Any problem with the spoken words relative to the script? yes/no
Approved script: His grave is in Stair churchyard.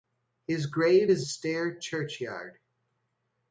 yes